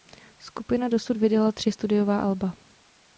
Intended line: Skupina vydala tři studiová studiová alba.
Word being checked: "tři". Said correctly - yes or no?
yes